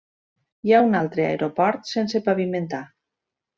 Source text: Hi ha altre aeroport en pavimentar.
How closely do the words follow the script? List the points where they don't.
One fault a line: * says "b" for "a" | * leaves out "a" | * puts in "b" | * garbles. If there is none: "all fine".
* puts in "un"
* says "sense" for "en"